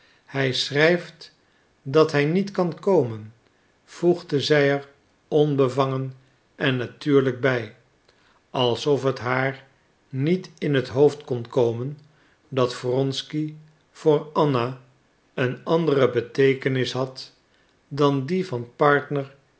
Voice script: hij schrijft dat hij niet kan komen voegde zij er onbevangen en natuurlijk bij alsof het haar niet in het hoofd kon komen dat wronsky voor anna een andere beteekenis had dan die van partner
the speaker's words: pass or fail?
pass